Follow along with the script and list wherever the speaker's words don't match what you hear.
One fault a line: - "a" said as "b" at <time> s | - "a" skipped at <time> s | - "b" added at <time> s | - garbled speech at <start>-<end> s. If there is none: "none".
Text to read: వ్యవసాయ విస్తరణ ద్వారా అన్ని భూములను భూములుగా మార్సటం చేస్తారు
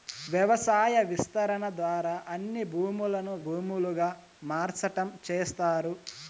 none